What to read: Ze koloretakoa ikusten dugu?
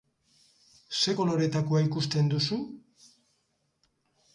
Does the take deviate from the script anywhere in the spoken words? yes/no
yes